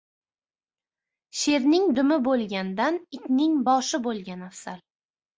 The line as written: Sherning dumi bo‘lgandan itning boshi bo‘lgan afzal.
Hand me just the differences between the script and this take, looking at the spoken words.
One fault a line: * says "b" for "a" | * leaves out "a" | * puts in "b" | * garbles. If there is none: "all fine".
all fine